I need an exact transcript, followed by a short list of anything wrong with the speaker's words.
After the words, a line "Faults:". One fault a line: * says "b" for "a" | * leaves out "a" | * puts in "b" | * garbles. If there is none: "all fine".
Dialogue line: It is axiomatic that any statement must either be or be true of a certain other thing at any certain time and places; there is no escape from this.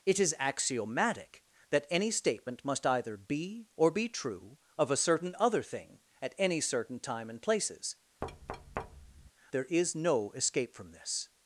It is axiomatic that any statement must either be or be true of a certain other thing at any certain time and places; there is no escape from this.
Faults:
all fine